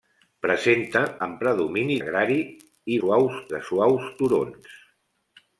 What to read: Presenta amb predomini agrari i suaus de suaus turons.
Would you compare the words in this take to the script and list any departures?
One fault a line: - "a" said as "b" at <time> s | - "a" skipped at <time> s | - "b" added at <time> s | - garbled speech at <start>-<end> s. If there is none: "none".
none